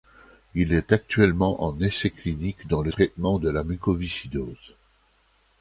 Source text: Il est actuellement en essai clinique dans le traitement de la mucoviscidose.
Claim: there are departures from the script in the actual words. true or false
false